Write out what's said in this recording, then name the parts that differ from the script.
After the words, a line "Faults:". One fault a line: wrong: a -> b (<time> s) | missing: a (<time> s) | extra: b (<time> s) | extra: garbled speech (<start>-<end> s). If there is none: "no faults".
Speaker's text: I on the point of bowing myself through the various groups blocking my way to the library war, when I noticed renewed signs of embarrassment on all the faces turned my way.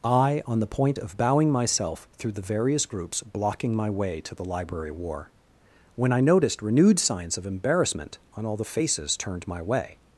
I on the point of bowing myself through the various groups blocking my way to the library war, when I noticed renewed signs of embarrassment on all the faces turned my way.
Faults:
no faults